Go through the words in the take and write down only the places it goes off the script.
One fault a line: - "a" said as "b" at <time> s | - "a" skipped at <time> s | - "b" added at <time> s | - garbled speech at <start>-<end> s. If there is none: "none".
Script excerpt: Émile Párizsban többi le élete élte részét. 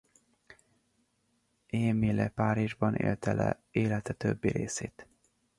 - "többi" said as "élte" at 3.0 s
- "élte" said as "többi" at 4.1 s